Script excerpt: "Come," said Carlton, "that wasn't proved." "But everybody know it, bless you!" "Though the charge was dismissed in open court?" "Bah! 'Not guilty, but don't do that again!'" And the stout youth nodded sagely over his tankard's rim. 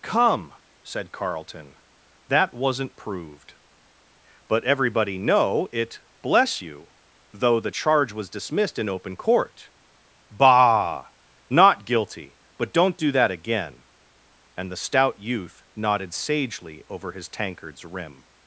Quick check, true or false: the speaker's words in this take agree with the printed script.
true